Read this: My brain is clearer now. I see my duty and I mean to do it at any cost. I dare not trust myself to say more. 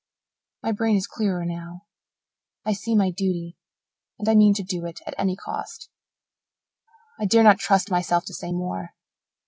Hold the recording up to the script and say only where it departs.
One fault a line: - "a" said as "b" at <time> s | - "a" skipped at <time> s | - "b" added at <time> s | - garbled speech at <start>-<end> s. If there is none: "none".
none